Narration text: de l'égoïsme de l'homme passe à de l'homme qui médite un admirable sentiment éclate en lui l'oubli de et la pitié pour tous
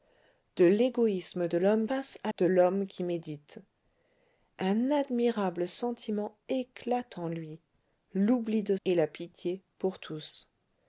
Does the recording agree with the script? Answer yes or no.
yes